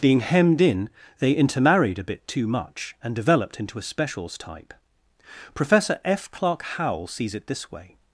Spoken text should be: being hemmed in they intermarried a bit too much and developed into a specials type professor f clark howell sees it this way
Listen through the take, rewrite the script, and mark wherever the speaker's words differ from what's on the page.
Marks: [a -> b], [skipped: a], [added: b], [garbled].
being hemmed in they intermarried a bit too much and developed into a specials type professor f clark howell sees it this way